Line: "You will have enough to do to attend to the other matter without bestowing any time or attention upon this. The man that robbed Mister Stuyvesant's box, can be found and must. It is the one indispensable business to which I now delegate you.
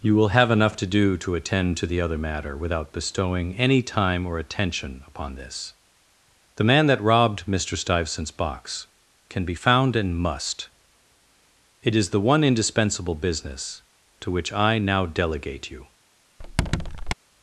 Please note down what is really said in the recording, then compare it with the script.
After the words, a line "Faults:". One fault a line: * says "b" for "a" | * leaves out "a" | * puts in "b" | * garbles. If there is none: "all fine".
"You will have enough to do to attend to the other matter without bestowing any time or attention upon this. The man that robbed Mister Stuyvesant's box, can be found and must. It is the one indispensable business to which I now delegate you.
Faults:
all fine